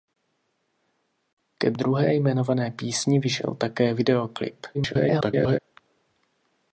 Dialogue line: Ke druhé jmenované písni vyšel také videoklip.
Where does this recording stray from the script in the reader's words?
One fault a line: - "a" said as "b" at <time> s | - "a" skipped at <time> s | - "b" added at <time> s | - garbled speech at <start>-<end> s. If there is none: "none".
- garbled speech at 4.7-5.6 s